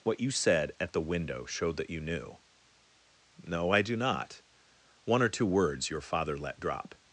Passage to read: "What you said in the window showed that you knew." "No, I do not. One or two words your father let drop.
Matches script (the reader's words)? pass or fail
fail